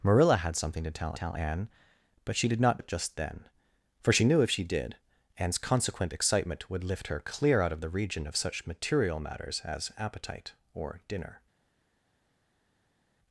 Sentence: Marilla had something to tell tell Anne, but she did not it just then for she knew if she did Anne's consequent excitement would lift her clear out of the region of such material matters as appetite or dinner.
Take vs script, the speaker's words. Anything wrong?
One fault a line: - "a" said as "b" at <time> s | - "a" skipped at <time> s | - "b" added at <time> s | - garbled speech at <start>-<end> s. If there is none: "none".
none